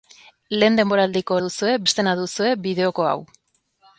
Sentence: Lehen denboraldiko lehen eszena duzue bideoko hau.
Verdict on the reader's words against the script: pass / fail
fail